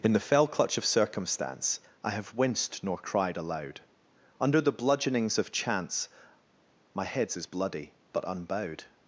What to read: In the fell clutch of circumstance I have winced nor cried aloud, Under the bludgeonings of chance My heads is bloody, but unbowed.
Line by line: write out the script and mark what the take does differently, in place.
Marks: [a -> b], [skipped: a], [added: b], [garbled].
In the fell clutch of circumstance I have winced nor cried aloud, Under the bludgeonings of chance My heads is bloody, but unbowed.